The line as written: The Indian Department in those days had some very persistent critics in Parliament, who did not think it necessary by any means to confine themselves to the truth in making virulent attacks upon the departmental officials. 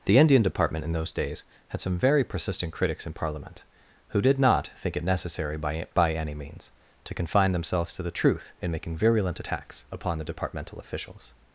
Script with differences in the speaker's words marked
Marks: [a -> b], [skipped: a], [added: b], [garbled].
The Indian Department in those days had some very persistent critics in Parliament, who did not think it necessary by [added: by] any means to confine themselves to the truth in making virulent attacks upon the departmental officials.